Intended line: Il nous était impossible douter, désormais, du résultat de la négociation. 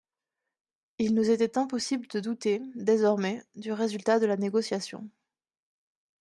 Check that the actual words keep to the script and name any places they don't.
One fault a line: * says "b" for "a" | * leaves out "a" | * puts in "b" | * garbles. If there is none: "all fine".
* puts in "de"